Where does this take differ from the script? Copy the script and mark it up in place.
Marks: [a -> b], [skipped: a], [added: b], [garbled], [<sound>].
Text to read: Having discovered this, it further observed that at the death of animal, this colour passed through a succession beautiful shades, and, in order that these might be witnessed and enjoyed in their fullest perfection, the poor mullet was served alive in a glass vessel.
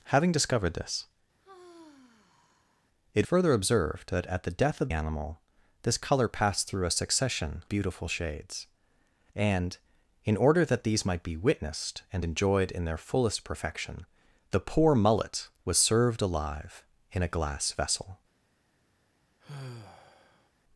Having discovered this, [sigh] it further observed that at the death of animal, this colour passed through a succession beautiful shades, and, in order that these might be witnessed and enjoyed in their fullest perfection, the poor mullet was served alive in a glass vessel. [sigh]